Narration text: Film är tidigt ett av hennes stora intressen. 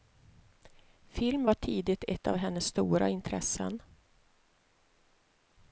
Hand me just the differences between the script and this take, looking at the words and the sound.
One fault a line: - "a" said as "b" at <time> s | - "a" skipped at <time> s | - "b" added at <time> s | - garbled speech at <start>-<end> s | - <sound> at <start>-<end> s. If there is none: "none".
- "är" said as "var" at 1.4 s